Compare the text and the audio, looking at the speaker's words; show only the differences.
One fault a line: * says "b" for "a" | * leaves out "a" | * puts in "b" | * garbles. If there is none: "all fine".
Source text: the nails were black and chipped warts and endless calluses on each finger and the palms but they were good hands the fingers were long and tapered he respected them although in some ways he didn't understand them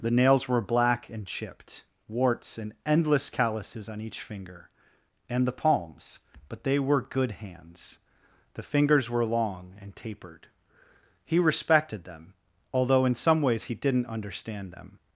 all fine